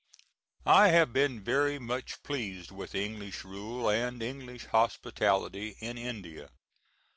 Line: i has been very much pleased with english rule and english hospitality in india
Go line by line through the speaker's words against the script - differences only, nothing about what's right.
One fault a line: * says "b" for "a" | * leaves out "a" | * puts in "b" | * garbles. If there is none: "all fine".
* says "have" for "has"